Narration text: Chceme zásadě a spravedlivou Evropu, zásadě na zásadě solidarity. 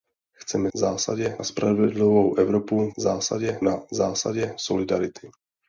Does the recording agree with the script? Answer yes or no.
yes